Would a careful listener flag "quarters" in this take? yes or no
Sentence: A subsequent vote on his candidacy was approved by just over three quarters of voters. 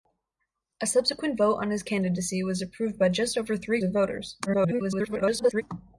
yes